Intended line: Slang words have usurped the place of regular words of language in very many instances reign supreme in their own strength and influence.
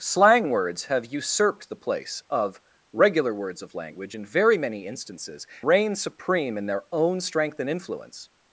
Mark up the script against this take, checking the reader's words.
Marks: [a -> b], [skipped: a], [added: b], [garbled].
Slang words have usurped the place of regular words of language in very many instances reign supreme in their own strength and influence.